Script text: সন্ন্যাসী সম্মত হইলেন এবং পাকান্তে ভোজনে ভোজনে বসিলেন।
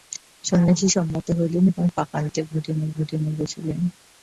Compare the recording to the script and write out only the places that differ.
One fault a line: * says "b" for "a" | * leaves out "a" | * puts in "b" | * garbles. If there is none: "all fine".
all fine